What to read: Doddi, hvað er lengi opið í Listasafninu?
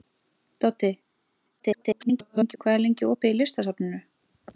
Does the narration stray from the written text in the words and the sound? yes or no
yes